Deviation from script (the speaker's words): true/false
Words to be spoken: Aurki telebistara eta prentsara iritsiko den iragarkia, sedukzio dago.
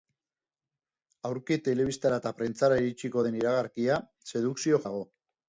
false